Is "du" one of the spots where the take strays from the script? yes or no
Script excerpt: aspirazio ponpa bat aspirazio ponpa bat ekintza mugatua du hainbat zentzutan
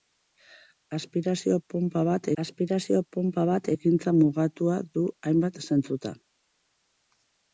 no